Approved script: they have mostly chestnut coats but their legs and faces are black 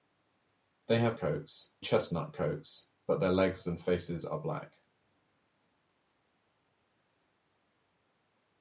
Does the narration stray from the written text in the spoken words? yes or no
yes